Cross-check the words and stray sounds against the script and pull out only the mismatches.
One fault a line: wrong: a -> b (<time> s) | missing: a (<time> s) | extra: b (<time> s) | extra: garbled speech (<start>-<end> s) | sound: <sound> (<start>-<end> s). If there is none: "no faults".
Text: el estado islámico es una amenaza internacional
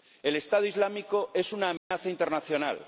sound: dropout (1.8-1.9 s)